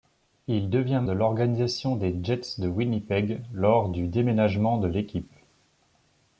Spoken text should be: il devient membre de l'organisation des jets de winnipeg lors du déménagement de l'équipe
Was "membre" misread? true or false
true